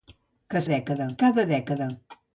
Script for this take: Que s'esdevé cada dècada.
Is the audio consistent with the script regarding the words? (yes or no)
no